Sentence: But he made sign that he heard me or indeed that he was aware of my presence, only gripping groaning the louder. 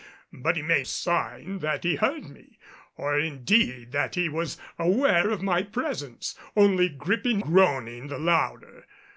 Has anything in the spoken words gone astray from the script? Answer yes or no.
no